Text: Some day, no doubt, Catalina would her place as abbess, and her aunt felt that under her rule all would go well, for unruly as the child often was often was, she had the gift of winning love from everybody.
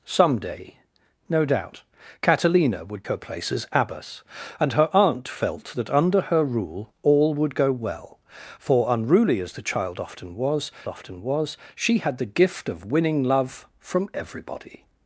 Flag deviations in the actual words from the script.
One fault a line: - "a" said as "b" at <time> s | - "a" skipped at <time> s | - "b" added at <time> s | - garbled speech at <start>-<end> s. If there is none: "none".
none